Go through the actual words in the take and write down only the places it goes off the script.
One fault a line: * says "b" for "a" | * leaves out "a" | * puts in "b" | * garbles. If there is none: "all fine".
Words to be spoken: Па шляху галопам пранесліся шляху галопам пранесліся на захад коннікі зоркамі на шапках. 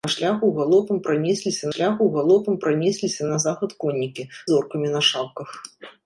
all fine